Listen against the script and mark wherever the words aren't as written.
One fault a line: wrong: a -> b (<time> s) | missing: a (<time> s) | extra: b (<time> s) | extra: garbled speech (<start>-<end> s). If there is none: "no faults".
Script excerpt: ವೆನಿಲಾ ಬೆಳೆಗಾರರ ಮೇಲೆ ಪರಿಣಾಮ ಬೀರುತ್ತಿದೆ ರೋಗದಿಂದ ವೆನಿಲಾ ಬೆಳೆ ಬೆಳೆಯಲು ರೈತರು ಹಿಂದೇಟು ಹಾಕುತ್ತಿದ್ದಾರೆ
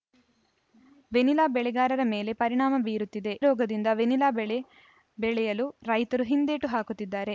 no faults